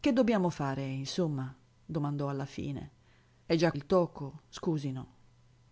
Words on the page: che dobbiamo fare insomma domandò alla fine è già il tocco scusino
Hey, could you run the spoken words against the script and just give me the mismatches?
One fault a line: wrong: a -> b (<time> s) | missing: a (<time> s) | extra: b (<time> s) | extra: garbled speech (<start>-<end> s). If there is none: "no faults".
no faults